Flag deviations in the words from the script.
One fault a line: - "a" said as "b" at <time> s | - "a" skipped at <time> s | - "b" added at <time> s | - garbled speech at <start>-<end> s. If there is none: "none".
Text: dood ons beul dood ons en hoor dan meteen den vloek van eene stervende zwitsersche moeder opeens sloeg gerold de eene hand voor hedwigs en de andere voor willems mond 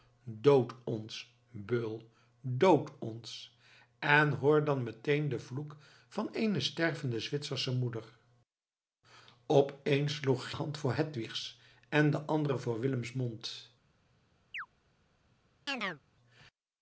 - "gerold de eene" skipped at 10.5 s